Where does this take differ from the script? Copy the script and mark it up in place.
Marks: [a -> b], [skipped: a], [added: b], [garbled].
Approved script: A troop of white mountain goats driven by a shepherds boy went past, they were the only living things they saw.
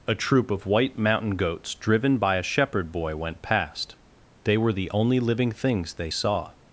A troop of white mountain goats driven by a [shepherds -> shepherd] boy went past, they were the only living things they saw.